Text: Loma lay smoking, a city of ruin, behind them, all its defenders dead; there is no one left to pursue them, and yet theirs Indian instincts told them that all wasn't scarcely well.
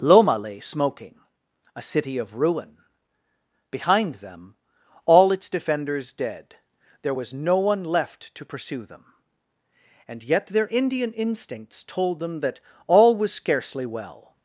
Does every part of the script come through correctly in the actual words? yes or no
no